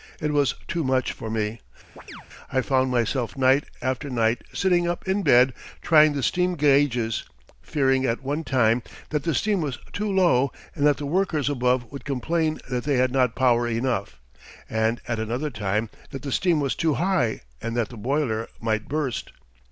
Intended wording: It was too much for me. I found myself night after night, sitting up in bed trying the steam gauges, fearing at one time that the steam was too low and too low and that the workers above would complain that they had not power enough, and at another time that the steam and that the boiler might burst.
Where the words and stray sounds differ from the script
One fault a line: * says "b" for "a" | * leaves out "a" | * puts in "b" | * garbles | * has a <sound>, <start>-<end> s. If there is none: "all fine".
* has a chirp, 2.0-2.3 s
* leaves out "too low and"
* puts in "was too high"